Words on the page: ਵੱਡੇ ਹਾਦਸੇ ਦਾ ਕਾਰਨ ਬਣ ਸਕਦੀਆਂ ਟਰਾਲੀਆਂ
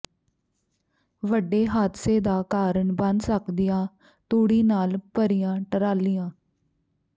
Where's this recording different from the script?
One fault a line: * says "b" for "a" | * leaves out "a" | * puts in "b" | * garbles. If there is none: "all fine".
* puts in "ਤੂੜੀ ਨਾਲ ਭਰੀਆਂ"